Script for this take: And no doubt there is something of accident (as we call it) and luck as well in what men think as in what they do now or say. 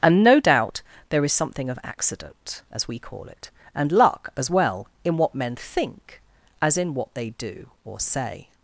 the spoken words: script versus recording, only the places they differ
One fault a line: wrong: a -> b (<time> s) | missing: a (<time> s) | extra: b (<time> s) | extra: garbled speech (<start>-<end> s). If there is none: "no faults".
missing: now (7.7 s)